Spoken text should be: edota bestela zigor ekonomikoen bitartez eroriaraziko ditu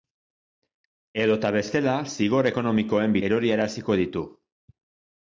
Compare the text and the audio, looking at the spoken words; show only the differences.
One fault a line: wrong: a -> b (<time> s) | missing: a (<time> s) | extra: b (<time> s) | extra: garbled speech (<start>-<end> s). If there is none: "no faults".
missing: bitartez (3.2 s)